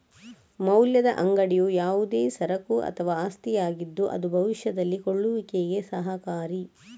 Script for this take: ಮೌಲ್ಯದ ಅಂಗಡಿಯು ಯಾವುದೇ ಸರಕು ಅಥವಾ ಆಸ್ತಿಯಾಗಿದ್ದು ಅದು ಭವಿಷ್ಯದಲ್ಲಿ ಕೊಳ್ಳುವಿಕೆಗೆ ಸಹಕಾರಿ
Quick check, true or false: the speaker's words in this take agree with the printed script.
true